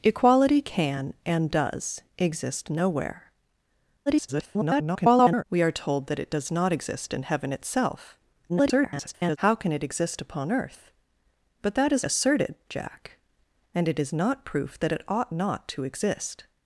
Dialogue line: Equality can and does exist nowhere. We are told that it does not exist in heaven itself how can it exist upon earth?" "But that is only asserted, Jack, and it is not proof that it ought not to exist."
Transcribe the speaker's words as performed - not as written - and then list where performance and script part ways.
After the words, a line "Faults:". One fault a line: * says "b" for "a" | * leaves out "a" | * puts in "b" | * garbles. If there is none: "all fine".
Equality can and does exist nowhere. [garbled] We are told that it does not exist in heaven itself [garbled] how can it exist upon earth?" "But that is asserted, Jack, and it is not proof that it ought not to exist."
Faults:
* garbles
* garbles
* leaves out "only"